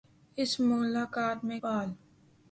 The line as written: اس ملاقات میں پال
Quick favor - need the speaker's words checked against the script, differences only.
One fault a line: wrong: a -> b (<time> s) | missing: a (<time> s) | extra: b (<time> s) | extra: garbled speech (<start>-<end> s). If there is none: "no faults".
no faults